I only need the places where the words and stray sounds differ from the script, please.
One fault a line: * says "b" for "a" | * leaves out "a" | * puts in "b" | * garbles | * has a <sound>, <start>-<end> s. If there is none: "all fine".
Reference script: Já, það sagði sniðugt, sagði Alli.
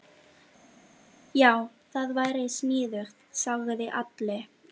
* says "væri" for "sagði"